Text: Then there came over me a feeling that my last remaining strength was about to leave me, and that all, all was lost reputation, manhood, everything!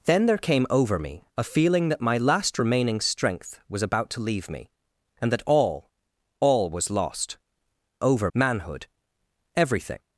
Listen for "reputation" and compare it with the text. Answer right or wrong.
wrong